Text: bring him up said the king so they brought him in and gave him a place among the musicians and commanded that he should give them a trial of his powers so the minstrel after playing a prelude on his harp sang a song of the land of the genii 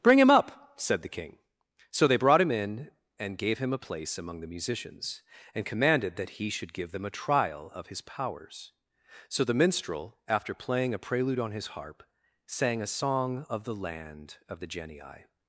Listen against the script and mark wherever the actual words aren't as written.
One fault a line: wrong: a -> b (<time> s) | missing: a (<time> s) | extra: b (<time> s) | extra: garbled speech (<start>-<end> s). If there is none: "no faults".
no faults